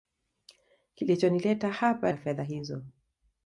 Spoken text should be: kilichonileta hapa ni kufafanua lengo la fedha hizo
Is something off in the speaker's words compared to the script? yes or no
yes